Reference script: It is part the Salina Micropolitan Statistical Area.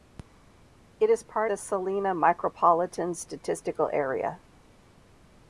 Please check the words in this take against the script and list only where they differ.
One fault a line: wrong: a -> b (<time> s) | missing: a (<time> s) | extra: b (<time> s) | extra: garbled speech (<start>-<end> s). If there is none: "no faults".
no faults